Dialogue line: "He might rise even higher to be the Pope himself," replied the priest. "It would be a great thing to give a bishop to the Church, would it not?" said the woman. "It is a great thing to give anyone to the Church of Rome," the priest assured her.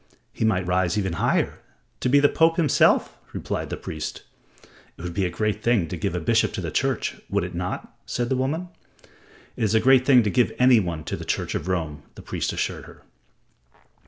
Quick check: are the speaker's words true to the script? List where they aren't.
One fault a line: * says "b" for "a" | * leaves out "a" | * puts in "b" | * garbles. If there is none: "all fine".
all fine